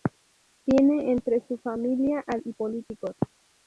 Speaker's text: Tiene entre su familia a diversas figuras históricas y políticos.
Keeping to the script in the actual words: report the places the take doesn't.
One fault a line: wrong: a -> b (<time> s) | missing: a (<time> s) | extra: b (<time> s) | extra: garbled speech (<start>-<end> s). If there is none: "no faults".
missing: diversas figuras históricas (2.4 s)